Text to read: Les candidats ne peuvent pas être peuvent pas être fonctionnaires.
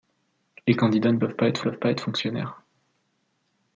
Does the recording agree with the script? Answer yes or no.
yes